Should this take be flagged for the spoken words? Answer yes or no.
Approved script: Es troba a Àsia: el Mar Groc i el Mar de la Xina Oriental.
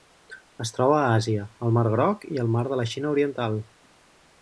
no